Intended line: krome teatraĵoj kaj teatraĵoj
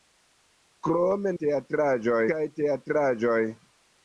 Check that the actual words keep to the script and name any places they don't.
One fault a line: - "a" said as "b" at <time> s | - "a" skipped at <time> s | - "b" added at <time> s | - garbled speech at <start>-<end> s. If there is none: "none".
none